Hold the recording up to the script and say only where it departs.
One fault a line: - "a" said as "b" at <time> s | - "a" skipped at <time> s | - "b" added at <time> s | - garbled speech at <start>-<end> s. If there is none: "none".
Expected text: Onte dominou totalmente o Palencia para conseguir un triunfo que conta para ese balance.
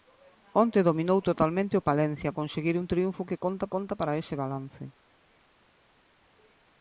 - "para" skipped at 2.3 s
- "conta" added at 3.7 s